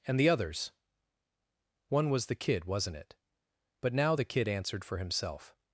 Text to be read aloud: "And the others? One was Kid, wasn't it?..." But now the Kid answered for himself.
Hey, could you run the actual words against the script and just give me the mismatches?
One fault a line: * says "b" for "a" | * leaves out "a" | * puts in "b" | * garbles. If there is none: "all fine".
* puts in "the"